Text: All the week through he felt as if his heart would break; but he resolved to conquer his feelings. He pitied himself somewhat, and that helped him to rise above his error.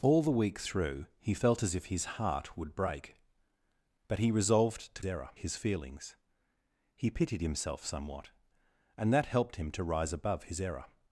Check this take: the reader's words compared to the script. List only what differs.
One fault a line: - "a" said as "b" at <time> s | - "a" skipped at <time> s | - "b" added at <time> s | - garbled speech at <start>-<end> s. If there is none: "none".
- "conquer" said as "error" at 5.0 s